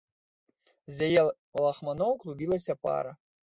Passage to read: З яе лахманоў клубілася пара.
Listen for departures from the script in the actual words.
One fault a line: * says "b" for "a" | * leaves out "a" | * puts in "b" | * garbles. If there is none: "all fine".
all fine